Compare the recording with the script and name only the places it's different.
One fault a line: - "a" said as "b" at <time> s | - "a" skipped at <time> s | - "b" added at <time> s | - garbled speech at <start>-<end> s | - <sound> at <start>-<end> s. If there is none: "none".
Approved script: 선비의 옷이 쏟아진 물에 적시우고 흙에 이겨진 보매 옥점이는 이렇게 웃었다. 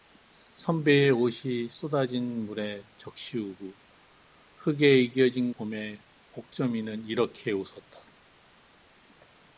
none